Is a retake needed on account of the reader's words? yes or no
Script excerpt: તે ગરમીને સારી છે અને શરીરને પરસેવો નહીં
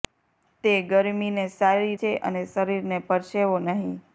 no